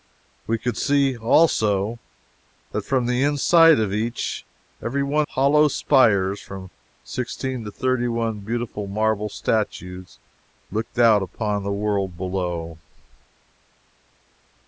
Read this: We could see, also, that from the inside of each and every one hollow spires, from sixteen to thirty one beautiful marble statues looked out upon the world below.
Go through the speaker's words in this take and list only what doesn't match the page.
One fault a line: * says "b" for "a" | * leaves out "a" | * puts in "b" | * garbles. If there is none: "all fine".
all fine